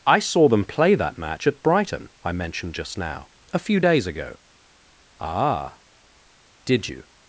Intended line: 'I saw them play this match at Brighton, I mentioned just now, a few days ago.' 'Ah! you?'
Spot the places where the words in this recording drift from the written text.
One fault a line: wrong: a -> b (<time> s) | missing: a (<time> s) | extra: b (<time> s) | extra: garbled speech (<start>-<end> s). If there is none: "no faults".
wrong: this -> that (0.9 s)
extra: did (6.6 s)